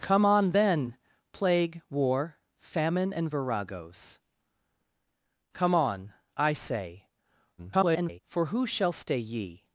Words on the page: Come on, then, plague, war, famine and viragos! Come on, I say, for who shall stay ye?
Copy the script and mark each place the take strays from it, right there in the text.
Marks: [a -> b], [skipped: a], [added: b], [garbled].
Come on, then, plague, war, famine and viragos! Come on, I say, [garbled] for who shall stay ye?